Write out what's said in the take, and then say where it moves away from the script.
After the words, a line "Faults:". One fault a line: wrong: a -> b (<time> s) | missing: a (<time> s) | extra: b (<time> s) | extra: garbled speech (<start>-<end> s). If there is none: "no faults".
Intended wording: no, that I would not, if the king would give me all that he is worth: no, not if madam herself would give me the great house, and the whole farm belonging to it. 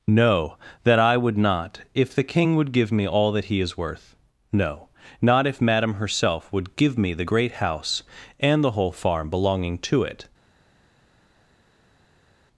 no, that I would not, if the king would give me all that he is worth: no, not if madam herself would give me the great house, and the whole farm belonging to it.
Faults:
no faults